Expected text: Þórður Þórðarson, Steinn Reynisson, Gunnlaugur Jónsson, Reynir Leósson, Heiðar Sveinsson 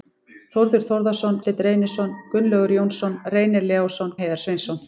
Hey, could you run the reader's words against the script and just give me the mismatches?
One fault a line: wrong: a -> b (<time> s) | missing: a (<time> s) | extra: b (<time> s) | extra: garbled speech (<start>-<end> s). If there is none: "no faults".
no faults